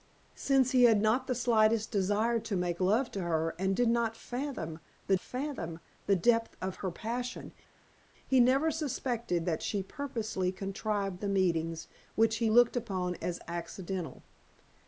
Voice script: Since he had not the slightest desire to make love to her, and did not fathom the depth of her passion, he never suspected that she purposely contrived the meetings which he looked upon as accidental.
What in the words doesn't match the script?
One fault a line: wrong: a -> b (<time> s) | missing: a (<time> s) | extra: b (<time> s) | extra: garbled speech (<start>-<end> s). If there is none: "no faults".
extra: fathom the (5.2 s)